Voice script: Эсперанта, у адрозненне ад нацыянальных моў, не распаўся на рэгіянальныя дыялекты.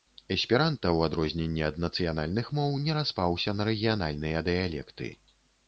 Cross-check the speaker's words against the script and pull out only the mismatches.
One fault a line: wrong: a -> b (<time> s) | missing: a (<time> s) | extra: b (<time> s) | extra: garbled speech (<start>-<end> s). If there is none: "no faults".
no faults